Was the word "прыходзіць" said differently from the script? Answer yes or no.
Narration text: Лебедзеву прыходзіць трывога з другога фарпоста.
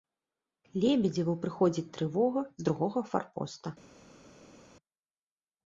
no